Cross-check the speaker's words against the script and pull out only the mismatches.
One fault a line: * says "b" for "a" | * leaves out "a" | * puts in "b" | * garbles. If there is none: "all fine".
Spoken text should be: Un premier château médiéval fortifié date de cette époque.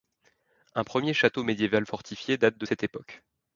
all fine